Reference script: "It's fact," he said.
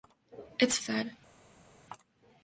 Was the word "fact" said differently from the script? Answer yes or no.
yes